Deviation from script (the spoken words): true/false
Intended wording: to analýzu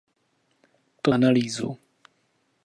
false